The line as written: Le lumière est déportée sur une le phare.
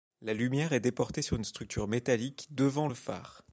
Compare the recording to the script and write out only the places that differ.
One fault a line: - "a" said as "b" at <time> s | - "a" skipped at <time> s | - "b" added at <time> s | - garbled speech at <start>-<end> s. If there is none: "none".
- "Le" said as "La" at 0.2 s
- "structure métallique devant" added at 1.4 s